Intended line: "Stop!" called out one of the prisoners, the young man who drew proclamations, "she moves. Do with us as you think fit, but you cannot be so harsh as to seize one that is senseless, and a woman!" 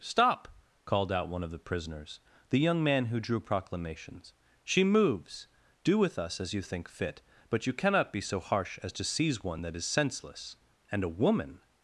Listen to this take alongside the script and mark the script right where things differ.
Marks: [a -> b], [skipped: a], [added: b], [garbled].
"Stop!" called out one of the prisoners, the young man who drew proclamations, "she moves. Do with us as you think fit, but you cannot be so harsh as to seize one that is senseless, and a woman!"